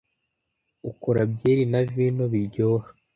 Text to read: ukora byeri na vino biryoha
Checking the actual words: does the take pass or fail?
pass